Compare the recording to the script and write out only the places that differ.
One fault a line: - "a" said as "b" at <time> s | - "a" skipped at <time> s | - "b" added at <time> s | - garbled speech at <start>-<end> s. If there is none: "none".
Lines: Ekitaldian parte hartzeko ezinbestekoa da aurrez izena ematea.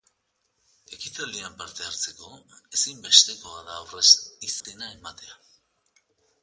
none